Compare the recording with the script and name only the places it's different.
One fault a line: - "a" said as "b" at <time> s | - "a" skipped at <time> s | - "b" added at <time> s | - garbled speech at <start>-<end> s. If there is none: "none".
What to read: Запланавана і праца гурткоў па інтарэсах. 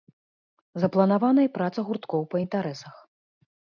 none